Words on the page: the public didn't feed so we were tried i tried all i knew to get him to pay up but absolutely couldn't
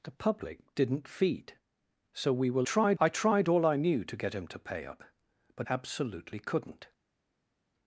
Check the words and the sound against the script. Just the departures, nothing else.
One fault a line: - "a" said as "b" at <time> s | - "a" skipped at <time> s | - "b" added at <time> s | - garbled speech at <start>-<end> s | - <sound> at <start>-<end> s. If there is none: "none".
none